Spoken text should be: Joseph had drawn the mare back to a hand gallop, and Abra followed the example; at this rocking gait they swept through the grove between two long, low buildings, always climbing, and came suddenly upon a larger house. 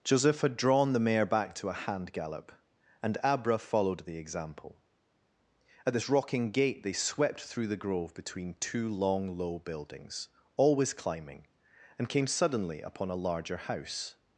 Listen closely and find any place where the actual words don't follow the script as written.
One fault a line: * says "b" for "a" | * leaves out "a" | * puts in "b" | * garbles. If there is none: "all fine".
all fine